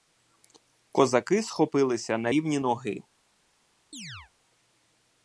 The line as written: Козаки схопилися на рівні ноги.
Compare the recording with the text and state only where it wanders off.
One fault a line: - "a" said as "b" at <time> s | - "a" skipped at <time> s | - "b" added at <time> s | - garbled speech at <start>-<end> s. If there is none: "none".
none